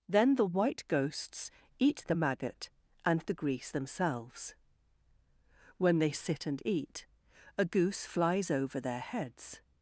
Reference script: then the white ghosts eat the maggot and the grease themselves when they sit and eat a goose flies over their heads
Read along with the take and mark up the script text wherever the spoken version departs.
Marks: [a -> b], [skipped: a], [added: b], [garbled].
then the white ghosts eat the maggot and the grease themselves when they sit and eat a goose flies over their heads